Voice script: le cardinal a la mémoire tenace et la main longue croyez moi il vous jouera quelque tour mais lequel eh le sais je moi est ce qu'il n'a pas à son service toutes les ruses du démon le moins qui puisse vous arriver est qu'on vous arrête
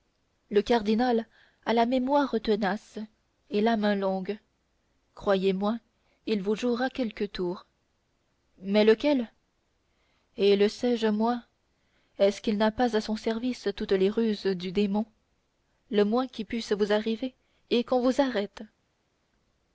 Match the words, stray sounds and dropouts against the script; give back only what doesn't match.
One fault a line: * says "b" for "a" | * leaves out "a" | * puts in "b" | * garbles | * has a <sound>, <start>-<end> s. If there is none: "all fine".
all fine